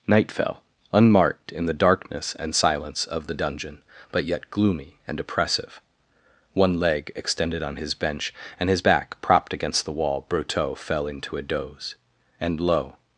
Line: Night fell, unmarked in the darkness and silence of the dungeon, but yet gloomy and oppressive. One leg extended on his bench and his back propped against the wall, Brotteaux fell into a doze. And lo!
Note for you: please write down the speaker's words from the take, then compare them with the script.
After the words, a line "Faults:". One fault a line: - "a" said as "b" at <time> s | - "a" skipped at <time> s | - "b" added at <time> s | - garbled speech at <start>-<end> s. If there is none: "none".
Night fell, unmarked in the darkness and silence of the dungeon, but yet gloomy and oppressive. One leg extended on his bench and his back propped against the wall, Brotteaux fell into a doze. And lo!
Faults:
none